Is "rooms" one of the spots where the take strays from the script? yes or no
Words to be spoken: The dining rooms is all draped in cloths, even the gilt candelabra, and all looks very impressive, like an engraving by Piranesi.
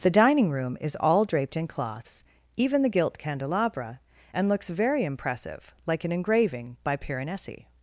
yes